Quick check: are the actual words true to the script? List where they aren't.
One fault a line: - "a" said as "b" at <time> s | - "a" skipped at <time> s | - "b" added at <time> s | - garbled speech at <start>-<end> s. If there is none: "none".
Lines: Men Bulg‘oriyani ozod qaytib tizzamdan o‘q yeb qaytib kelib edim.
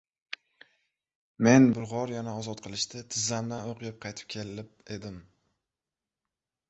- "qaytib" said as "qilishda" at 2.7 s